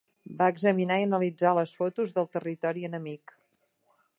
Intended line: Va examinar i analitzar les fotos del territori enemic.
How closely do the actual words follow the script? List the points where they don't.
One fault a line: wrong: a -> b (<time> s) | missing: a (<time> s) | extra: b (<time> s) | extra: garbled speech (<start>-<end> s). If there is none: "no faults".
no faults